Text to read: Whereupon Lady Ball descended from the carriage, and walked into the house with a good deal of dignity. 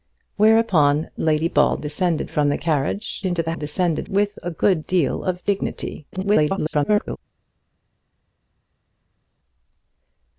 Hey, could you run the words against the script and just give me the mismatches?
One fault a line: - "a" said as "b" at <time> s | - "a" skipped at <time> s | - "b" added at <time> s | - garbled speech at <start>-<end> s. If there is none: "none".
- "and walked" skipped at 3.2 s
- "house" said as "descended" at 3.5 s
- garbled speech at 6.1-7.2 s